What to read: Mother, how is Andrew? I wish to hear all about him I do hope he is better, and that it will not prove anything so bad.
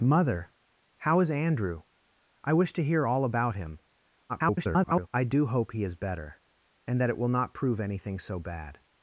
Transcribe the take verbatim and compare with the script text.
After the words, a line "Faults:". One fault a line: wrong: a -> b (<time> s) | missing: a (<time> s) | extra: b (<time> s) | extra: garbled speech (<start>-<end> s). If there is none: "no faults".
Mother, how is Andrew? I wish to hear all about him [garbled] I do hope he is better, and that it will not prove anything so bad.
Faults:
extra: garbled speech (4.3-5.1 s)